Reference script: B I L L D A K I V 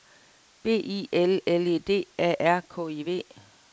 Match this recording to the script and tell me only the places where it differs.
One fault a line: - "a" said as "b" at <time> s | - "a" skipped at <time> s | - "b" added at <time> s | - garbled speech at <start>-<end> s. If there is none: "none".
- "E" added at 1.7 s
- "R" added at 2.4 s